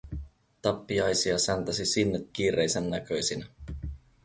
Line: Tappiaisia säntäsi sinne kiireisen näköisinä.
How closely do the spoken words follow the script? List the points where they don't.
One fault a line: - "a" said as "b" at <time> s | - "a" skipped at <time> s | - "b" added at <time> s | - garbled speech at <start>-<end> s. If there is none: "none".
none